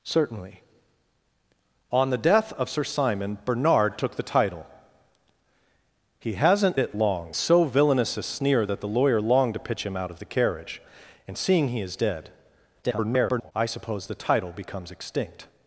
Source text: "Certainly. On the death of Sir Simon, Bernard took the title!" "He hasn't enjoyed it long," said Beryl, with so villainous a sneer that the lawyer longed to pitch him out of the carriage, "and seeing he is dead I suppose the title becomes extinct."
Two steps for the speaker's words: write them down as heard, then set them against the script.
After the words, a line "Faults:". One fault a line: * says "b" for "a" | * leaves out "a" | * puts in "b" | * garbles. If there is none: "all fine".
"Certainly. On the death of Sir Simon, Bernard took the title!" "He hasn't it long," so villainous a sneer that the lawyer longed to pitch him out of the carriage, "and seeing he is dead [garbled] I suppose the title becomes extinct."
Faults:
* leaves out "enjoyed"
* leaves out "said Beryl with"
* garbles